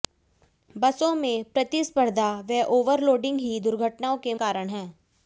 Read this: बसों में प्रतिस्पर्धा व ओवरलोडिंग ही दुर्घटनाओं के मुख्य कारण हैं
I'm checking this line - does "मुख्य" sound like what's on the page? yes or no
no